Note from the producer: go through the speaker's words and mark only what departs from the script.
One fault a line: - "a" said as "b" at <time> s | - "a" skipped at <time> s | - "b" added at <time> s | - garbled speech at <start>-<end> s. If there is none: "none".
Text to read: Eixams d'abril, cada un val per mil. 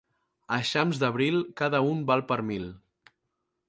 none